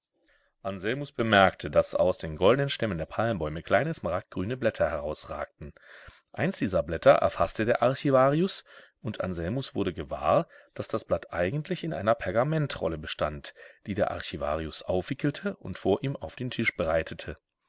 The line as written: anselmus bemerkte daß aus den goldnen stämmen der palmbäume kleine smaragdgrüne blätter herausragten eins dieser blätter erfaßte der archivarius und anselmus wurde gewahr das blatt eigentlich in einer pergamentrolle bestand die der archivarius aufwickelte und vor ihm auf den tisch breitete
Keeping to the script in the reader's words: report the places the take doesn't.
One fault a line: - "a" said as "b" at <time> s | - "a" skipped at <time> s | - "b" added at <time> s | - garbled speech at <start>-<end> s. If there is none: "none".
- "daß" added at 10.7 s